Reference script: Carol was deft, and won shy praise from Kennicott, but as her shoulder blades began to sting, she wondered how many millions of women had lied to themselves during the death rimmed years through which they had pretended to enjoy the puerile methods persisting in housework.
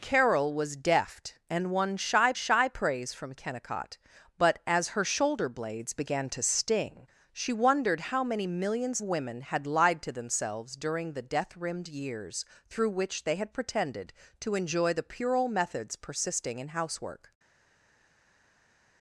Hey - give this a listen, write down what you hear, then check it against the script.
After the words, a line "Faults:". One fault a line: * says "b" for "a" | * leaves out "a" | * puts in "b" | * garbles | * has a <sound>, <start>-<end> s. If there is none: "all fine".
Carol was deft, and won shy shy praise from Kennicott, but as her shoulder blades began to sting, she wondered how many millions women had lied to themselves during the death rimmed years through which they had pretended to enjoy the puerile methods persisting in housework.
Faults:
* puts in "shy"
* leaves out "of"